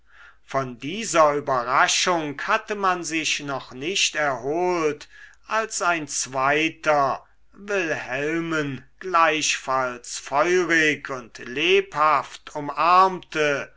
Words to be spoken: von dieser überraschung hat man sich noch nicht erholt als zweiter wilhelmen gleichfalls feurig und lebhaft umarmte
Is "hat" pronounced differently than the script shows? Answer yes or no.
yes